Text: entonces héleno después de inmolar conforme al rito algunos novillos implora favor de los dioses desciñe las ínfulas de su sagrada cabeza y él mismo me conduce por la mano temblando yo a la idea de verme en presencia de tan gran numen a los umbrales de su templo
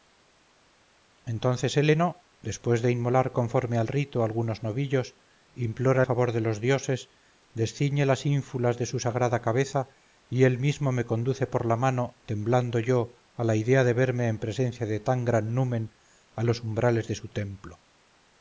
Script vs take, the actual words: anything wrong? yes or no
no